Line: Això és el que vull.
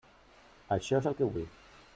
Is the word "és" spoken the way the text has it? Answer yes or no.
yes